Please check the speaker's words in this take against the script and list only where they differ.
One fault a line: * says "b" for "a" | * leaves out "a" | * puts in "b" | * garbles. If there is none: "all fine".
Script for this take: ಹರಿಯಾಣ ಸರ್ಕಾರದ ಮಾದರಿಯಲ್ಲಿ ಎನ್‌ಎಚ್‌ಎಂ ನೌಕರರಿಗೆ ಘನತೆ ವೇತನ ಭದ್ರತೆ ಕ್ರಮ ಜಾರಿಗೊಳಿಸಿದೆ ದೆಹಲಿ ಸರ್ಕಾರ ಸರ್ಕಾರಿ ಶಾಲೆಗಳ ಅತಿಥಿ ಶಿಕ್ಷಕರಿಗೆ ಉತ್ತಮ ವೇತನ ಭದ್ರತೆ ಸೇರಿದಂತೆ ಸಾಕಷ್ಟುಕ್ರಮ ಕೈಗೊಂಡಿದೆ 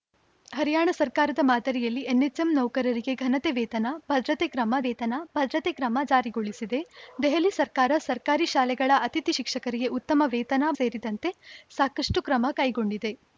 * puts in "ವೇತನ ಭದ್ರತೆ ಕ್ರಮ"
* leaves out "ಭದ್ರತೆ"